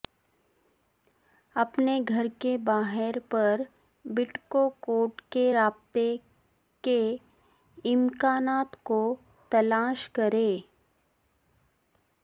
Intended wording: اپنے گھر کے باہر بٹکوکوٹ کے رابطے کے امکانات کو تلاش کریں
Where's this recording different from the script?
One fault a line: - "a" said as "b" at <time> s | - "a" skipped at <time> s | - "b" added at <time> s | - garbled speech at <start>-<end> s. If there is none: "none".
- "پر" added at 3.3 s